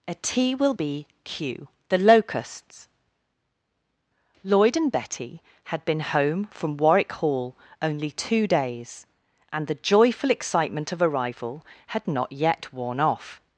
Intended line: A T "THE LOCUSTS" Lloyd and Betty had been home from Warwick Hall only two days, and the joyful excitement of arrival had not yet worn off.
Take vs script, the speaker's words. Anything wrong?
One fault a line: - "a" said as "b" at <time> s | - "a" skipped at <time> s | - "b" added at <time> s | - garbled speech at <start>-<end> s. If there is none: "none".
- "will be q" added at 0.6 s